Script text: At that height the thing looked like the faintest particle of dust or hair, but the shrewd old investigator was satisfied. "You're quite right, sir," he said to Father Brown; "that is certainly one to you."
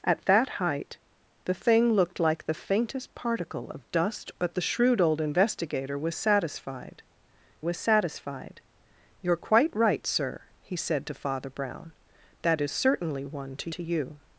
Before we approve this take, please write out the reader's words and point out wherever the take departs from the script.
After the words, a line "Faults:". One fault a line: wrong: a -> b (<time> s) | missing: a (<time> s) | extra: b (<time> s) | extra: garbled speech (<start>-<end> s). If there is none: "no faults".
At that height the thing looked like the faintest particle of dust but the shrewd old investigator was satisfied was satisfied. "You're quite right, sir," he said to Father Brown; "that is certainly one to to you."
Faults:
missing: or hair (4.3 s)
extra: was satisfied (7.6 s)
extra: to (13.7 s)